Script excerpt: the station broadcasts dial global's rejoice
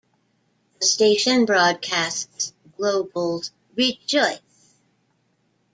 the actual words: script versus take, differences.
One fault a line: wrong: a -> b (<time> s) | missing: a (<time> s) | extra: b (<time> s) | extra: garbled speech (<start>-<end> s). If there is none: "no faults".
missing: dial (2.5 s)